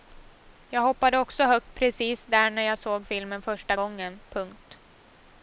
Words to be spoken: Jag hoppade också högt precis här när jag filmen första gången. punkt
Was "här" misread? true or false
true